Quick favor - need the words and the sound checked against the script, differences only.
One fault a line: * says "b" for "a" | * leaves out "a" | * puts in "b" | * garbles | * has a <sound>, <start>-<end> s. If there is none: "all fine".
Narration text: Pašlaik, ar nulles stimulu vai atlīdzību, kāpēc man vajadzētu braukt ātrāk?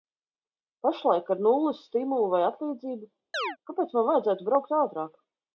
* has a chirp, 3.3-3.6 s